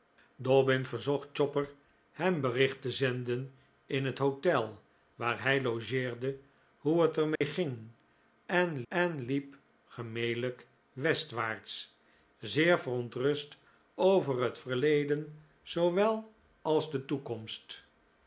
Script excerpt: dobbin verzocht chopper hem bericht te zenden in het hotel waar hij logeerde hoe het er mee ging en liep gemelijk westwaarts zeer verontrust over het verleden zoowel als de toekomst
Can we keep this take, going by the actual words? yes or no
no